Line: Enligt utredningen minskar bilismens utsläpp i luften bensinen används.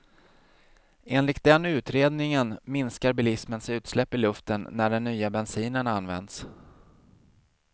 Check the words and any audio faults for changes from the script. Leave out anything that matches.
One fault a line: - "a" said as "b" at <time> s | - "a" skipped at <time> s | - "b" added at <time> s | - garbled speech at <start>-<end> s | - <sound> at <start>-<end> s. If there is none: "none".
- "den" added at 1.4 s
- "när den nya" added at 4.7 s